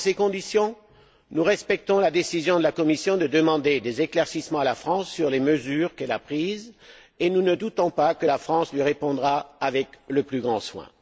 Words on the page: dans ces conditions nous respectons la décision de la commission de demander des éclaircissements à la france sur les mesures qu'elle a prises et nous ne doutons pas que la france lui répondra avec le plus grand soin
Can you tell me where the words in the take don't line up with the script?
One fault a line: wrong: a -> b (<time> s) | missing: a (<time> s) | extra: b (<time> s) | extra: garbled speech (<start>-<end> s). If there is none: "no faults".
no faults